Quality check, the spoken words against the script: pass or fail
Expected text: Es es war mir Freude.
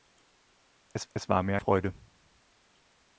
pass